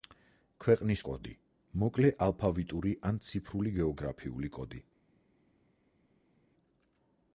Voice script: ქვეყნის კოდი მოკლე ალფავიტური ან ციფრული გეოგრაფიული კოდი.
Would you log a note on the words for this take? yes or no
no